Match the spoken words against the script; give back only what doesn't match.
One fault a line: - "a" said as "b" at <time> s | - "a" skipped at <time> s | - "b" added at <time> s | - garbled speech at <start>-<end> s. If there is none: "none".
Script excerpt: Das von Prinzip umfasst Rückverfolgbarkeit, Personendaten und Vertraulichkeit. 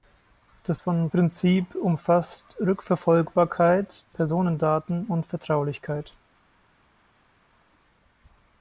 none